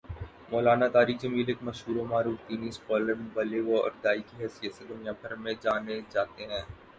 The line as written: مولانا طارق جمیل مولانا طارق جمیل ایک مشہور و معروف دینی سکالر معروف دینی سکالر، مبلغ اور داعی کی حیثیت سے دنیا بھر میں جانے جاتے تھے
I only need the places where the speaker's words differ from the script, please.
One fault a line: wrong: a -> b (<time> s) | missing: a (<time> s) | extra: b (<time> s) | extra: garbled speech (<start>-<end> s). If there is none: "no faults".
missing: مولانا طارق جمیل (1.5 s)
missing: معروف دینی سکالر (3.1 s)
wrong: تھے -> ہیں (6.4 s)